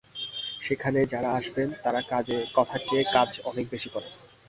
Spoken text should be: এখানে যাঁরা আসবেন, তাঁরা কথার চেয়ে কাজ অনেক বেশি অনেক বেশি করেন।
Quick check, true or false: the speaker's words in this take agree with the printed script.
false